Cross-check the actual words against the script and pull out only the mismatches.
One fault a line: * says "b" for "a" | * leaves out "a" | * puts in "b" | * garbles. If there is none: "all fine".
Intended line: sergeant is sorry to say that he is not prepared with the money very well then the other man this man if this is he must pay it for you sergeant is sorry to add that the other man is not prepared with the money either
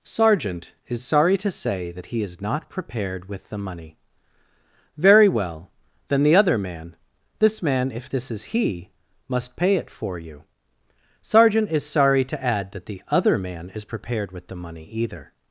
* leaves out "not"